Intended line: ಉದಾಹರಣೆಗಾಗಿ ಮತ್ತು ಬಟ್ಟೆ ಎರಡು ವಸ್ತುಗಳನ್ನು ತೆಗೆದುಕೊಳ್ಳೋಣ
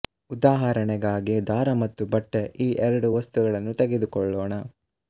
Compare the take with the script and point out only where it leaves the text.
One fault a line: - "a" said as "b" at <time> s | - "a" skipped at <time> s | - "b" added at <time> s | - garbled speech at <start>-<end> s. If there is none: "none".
- "ದಾರ" added at 1.5 s
- "ಈ" added at 2.6 s